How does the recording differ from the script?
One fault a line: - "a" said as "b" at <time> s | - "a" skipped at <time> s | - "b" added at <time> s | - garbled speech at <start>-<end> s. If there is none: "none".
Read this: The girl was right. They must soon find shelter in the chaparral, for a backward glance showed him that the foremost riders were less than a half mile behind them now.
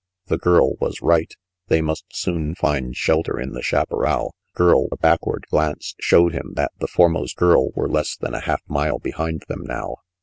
- "for" said as "girl" at 4.5 s
- "riders" said as "girl" at 7.3 s